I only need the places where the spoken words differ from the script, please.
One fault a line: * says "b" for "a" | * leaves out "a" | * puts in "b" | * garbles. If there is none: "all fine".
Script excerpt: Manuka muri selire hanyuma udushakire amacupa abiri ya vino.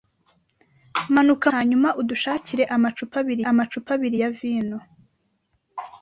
* says "hanyuma udushakire amacupa abiri" for "muri selire hanyuma udushakire"